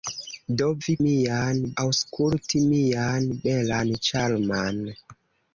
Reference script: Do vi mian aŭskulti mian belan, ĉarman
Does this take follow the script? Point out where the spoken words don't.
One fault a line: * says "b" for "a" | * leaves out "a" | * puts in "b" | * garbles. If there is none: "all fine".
all fine